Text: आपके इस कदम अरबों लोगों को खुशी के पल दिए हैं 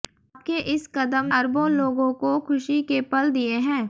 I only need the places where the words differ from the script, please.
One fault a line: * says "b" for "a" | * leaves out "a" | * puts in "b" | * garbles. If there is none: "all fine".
all fine